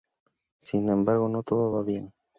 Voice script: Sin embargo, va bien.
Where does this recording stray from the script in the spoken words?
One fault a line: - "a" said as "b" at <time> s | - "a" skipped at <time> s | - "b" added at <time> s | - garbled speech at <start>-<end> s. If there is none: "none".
- "no todo" added at 1.3 s